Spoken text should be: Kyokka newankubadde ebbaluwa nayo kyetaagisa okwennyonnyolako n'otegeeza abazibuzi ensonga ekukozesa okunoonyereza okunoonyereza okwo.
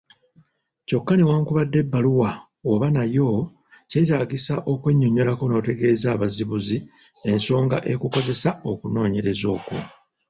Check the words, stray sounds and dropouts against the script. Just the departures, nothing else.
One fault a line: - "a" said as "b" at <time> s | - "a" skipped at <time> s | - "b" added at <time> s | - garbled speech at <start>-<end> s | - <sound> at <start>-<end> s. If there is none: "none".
- "oba" added at 2.7 s
- "okunoonyereza" skipped at 9.5 s